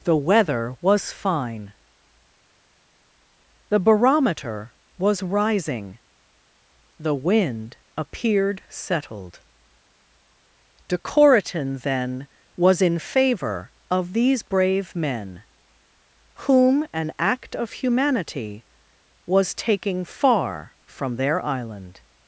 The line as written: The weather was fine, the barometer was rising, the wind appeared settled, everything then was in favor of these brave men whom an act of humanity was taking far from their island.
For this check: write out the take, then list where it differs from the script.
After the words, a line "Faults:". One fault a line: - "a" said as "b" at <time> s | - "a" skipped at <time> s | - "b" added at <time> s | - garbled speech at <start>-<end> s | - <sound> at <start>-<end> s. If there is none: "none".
The weather was fine, the barometer was rising, the wind appeared settled, decoratin then was in favor of these brave men whom an act of humanity was taking far from their island.
Faults:
- "everything" said as "decoratin" at 10.9 s